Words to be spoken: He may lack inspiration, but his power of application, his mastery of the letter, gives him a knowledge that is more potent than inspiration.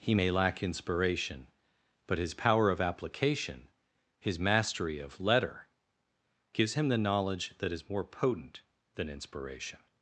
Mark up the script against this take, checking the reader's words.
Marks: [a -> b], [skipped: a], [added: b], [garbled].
He may lack inspiration, but his power of application, his mastery of [skipped: the] letter, gives him [a -> the] knowledge that is more potent than inspiration.